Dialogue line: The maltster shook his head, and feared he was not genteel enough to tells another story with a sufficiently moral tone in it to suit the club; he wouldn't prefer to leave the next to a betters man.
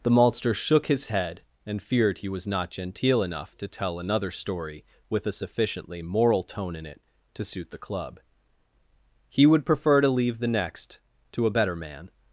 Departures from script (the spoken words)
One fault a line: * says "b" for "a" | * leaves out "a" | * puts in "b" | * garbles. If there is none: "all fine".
* says "tell" for "tells"
* says "would" for "wouldn't"
* says "better" for "betters"